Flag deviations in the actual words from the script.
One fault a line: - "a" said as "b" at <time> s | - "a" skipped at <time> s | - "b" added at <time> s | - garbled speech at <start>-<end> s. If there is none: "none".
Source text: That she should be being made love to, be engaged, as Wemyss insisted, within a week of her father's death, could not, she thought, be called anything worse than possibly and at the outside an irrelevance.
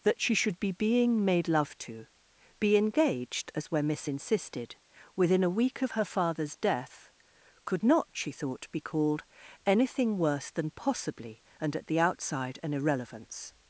none